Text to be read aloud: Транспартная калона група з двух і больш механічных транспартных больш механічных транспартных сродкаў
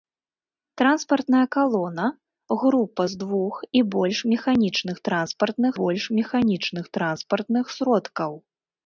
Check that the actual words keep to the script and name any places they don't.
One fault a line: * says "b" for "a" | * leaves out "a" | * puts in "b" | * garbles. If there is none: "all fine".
all fine